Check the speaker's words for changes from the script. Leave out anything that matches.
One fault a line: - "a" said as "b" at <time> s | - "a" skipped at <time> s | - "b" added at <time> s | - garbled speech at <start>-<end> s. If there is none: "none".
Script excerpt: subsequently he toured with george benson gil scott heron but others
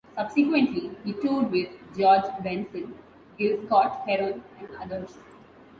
- "but" said as "and" at 4.6 s